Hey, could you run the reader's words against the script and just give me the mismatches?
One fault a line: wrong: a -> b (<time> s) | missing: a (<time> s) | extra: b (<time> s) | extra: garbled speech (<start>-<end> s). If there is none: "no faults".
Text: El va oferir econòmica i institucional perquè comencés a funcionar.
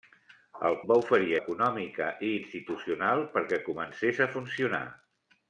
no faults